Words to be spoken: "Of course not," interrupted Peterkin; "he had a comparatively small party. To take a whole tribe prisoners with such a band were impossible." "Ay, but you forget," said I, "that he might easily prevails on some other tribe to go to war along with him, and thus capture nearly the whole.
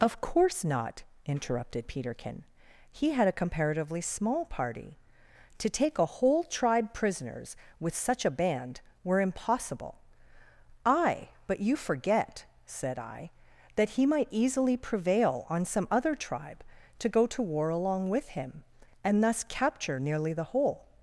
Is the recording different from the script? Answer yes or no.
yes